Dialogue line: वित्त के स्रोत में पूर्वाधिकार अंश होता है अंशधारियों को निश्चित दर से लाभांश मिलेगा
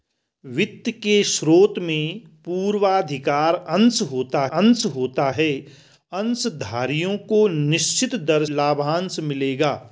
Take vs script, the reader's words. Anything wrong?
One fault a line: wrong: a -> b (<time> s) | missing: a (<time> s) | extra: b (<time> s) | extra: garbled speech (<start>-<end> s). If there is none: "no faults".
extra: अंश होता (4.5 s)
missing: से (8.4 s)